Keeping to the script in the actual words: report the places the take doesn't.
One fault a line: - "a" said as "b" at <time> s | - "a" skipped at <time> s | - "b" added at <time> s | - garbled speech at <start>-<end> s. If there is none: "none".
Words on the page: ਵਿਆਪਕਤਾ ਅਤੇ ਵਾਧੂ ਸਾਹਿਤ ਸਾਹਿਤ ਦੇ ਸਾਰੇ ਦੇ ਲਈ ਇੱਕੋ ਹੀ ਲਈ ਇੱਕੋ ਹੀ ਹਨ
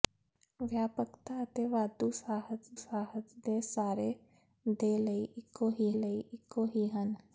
none